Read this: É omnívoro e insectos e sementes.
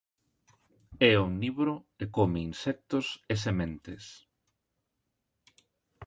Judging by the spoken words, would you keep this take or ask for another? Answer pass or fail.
fail